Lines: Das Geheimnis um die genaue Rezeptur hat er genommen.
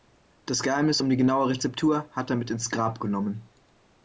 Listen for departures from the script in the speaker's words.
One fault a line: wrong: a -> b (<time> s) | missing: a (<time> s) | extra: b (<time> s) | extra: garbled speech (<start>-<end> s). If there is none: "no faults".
extra: mit ins Grab (2.4 s)